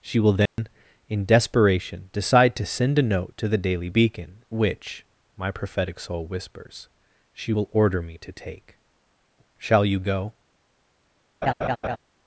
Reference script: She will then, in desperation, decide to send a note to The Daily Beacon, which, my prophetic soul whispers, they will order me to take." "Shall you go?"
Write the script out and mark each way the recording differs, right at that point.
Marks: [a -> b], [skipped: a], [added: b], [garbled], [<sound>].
She will then, [dropout] in desperation, decide to send a note to The Daily Beacon, which, my prophetic soul whispers, [they -> she] will order me to take." "Shall you go?" [laugh]